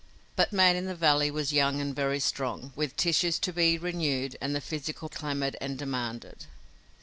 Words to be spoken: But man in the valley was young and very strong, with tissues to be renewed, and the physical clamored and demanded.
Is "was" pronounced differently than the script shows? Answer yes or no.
no